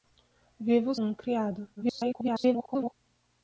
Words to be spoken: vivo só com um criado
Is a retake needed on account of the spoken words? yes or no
yes